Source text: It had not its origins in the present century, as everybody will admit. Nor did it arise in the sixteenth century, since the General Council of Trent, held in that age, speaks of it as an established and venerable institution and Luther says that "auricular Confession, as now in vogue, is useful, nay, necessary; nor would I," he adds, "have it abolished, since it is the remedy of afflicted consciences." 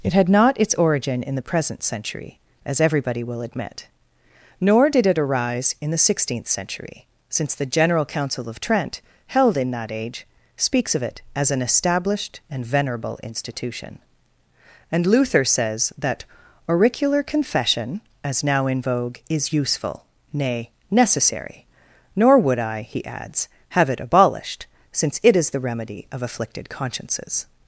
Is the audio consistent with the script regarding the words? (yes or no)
no